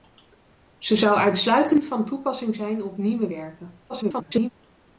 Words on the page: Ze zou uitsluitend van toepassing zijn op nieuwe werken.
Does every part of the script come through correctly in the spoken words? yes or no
no